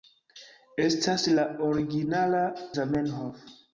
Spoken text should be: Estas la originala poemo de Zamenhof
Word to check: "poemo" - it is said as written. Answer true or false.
false